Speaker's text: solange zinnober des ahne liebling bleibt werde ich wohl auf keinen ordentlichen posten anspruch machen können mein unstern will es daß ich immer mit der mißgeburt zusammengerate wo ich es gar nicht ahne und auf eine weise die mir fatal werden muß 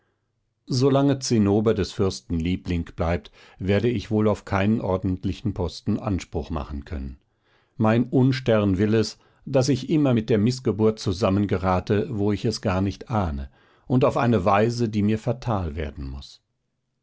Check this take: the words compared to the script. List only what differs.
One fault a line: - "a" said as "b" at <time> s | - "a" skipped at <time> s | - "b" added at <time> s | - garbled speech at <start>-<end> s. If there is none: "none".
- "ahne" said as "fürsten" at 1.9 s